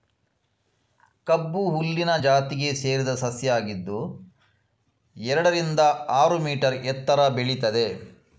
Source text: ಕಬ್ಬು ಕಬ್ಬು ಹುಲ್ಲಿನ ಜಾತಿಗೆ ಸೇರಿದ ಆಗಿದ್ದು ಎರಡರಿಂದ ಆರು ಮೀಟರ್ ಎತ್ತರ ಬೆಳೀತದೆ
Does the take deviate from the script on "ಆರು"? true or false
false